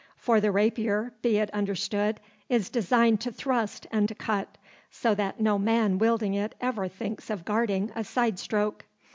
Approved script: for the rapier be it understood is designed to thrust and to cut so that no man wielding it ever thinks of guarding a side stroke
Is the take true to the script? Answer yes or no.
yes